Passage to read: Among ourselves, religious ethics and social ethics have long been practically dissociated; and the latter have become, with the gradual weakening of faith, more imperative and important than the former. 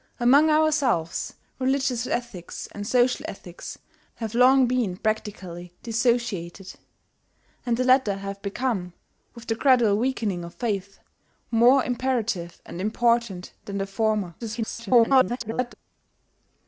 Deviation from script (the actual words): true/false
true